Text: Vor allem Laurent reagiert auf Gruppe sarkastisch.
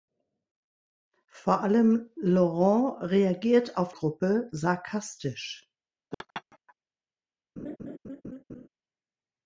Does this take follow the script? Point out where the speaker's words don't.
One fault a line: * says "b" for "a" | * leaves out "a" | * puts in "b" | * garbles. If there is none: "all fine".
all fine